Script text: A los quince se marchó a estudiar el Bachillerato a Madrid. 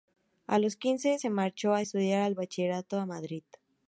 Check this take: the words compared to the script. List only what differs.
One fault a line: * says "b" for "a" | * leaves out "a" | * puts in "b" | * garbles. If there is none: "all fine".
all fine